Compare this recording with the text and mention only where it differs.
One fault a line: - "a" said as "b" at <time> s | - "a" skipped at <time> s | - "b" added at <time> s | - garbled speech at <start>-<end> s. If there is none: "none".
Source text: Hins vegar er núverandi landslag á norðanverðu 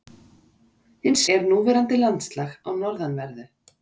- "vegar" skipped at 1.2 s